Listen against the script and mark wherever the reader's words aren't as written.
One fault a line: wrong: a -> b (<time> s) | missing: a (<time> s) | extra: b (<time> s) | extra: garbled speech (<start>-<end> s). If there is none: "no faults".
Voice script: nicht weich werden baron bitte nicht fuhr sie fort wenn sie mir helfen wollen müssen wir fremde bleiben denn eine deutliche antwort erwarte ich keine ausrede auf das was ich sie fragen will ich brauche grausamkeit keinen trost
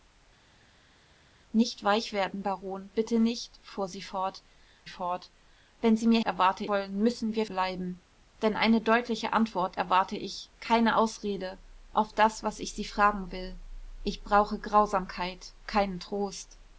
extra: fort (4.9 s)
wrong: helfen -> erwarte (6.2 s)
missing: fremde (7.5 s)